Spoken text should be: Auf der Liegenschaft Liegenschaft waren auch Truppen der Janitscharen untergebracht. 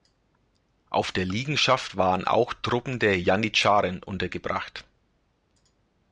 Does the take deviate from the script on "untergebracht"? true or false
false